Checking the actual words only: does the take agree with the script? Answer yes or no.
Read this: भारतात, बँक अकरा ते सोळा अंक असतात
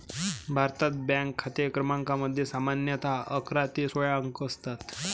no